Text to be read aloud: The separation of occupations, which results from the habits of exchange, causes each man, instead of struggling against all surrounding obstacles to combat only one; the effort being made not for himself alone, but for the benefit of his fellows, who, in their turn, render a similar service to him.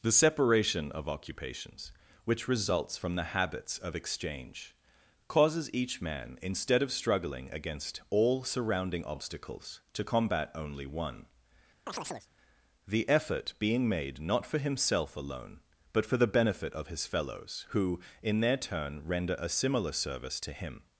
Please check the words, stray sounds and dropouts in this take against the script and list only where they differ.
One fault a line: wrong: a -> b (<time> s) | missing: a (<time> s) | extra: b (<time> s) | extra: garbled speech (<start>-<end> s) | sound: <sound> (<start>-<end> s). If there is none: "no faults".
sound: chirp (11.9-12.3 s)